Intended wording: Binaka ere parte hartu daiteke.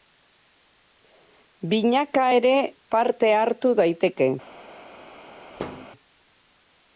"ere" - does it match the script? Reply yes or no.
yes